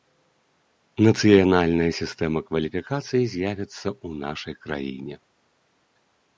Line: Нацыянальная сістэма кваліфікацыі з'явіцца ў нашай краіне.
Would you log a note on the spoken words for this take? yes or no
no